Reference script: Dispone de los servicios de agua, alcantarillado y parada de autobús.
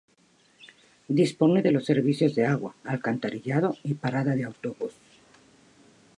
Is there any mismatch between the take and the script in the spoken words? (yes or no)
no